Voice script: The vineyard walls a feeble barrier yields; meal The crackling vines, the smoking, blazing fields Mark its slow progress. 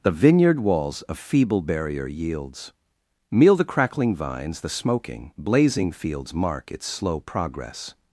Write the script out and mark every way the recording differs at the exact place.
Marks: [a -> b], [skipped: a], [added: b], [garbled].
The vineyard walls a feeble barrier yields; meal The crackling vines, the smoking, blazing fields Mark its slow progress.